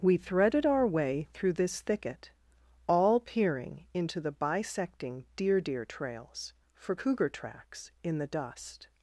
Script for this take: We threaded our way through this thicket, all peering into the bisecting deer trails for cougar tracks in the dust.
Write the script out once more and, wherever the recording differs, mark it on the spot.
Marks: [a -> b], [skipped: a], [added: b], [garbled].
We threaded our way through this thicket, all peering into the bisecting deer [added: deer] trails for cougar tracks in the dust.